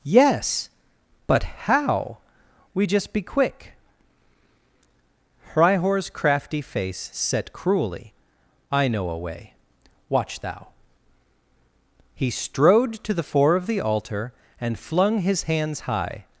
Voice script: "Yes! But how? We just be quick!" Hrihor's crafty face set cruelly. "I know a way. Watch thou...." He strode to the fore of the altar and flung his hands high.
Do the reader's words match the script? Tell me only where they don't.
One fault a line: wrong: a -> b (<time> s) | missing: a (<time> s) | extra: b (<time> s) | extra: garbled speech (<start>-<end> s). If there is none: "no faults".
no faults